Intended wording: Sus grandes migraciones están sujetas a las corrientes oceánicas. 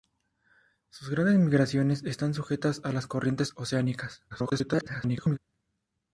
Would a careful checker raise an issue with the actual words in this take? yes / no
yes